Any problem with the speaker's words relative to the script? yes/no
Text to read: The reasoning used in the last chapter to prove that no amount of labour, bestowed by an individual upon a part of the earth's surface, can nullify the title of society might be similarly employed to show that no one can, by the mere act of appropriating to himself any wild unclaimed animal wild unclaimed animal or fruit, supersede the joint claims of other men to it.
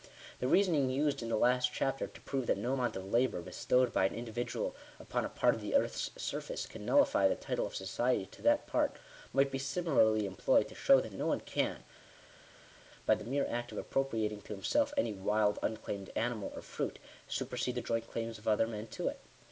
yes